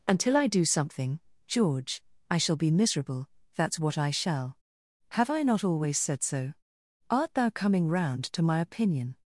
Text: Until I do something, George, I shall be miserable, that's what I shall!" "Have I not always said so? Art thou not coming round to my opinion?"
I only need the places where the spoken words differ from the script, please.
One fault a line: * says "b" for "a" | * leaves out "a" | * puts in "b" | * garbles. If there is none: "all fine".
* leaves out "not"